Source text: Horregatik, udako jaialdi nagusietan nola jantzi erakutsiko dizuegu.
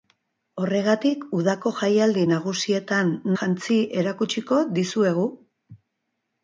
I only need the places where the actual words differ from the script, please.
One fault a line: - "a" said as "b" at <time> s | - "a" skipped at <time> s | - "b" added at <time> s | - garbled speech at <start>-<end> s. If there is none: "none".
- "nola" skipped at 3.1 s